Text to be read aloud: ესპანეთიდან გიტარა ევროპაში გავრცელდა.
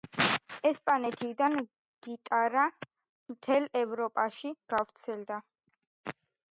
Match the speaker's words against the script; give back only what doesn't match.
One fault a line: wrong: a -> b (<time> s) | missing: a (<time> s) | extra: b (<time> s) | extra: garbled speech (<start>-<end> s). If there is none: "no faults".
extra: მთელ (3.4 s)